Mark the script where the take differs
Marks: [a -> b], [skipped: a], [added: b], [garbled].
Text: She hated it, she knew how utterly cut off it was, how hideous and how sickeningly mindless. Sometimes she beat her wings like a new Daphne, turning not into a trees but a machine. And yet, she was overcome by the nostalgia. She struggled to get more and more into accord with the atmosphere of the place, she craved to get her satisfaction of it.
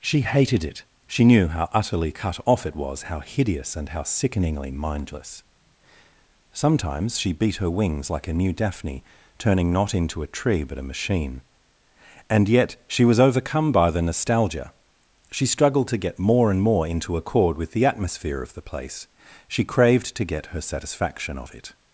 She hated it, she knew how utterly cut off it was, how hideous and how sickeningly mindless. Sometimes she beat her wings like a new Daphne, turning not into a [trees -> tree] but a machine. And yet, she was overcome by the nostalgia. She struggled to get more and more into accord with the atmosphere of the place, she craved to get her satisfaction of it.